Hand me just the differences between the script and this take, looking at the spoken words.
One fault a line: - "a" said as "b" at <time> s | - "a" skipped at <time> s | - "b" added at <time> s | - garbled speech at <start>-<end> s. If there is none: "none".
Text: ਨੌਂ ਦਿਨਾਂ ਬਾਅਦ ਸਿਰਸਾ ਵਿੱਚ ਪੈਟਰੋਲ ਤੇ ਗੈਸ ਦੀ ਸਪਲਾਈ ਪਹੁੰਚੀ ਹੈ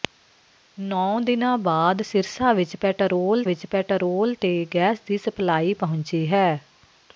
- "ਵਿੱਚ ਪੈਟਰੋਲ" added at 3.4 s